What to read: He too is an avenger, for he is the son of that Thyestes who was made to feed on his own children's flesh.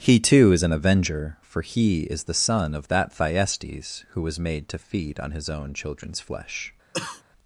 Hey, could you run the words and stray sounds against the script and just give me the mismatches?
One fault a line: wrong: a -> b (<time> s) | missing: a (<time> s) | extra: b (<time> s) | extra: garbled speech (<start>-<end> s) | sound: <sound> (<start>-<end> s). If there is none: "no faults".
sound: cough (6.9-7.2 s)